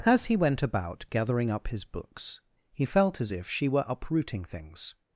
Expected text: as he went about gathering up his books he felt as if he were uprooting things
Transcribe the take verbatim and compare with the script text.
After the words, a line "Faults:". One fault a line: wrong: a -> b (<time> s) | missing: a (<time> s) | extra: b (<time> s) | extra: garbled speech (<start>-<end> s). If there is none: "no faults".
as he went about gathering up his books he felt as if she were uprooting things
Faults:
wrong: he -> she (3.5 s)